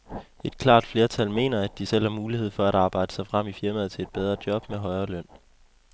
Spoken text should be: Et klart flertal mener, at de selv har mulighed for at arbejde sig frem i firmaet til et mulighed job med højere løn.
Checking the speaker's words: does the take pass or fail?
fail